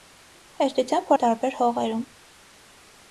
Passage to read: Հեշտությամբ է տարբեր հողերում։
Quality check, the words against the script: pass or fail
pass